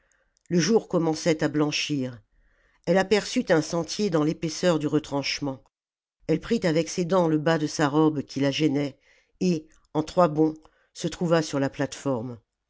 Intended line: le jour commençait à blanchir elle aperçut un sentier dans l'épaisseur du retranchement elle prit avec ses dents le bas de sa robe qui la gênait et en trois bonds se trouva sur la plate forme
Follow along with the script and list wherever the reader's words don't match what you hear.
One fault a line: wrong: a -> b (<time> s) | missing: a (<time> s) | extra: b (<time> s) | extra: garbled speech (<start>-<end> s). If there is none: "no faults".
no faults